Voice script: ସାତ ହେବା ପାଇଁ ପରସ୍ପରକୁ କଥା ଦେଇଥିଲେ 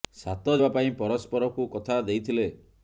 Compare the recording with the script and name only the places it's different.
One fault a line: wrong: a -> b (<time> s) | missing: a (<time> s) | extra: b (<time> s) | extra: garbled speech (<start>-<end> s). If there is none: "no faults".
no faults